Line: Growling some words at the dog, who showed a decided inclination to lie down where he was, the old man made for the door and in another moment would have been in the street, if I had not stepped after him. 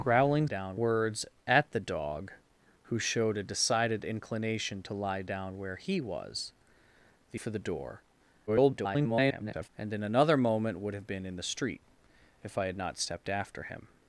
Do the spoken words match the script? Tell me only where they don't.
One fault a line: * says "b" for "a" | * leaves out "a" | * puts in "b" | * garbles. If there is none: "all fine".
* says "down" for "some"
* leaves out "old man made"
* garbles